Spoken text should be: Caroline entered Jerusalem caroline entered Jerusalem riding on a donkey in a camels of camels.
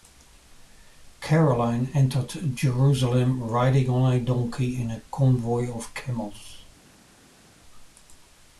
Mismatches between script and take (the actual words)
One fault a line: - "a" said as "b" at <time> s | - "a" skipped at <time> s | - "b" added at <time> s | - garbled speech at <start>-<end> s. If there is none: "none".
- "caroline entered Jerusalem" skipped at 3.4 s
- "camels" said as "convoy" at 5.1 s